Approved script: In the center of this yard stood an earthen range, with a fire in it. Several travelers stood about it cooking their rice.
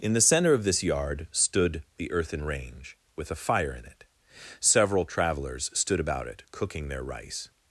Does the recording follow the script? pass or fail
fail